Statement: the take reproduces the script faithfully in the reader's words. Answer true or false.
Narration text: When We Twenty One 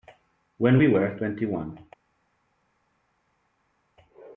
false